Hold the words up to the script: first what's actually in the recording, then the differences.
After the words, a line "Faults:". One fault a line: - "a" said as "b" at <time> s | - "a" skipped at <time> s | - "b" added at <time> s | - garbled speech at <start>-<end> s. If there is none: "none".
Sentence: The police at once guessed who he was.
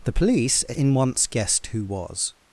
The police in once guessed who was.
Faults:
- "at" said as "in" at 0.6 s
- "he" skipped at 1.9 s